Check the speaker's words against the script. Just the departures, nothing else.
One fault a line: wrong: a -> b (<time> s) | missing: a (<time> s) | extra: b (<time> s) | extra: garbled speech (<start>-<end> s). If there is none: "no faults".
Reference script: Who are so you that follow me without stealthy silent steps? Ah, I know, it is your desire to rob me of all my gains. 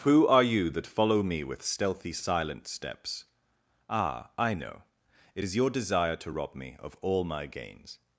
missing: so (0.4 s)
wrong: without -> with (1.4 s)